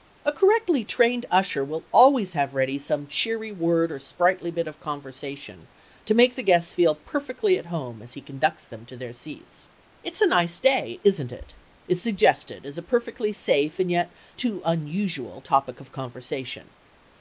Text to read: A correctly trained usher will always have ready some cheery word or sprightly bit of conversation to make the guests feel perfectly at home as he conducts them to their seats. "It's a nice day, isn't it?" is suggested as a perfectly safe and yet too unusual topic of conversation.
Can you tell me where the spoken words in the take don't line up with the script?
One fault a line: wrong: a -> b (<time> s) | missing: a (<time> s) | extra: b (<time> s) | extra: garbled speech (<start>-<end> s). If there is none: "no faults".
no faults